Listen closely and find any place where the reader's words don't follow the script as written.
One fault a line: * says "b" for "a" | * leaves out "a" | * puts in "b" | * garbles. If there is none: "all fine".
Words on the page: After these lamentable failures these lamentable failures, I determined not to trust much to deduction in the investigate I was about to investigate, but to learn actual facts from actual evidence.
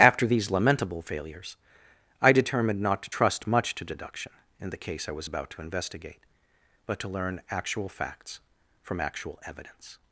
* leaves out "these lamentable failures"
* says "case" for "investigate"